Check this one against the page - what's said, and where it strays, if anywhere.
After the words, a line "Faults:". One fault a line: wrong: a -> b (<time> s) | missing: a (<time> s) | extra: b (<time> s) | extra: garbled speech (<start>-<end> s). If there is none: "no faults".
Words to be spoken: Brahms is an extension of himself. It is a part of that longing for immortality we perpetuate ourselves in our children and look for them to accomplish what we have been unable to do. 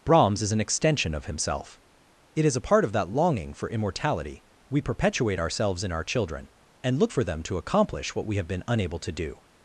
Brahms is an extension of himself. It is a part of that longing for immortality we perpetuate ourselves in our children and look for them to accomplish what we have been unable to do.
Faults:
no faults